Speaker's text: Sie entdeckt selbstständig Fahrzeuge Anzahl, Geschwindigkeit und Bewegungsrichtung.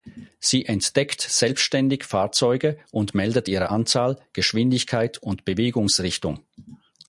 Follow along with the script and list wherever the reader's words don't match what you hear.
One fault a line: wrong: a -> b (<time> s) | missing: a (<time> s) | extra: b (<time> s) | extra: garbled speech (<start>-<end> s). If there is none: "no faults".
extra: und meldet ihre (2.9 s)